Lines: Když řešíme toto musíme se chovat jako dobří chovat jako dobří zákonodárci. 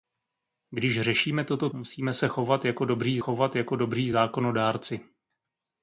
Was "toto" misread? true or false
false